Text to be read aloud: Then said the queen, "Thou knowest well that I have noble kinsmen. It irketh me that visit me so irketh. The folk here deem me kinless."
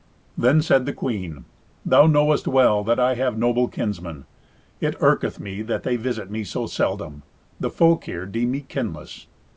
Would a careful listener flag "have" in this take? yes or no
no